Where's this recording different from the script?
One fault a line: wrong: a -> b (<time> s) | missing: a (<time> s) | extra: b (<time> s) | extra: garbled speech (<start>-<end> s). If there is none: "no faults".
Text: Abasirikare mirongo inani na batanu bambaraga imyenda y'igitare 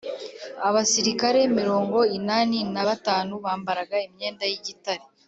no faults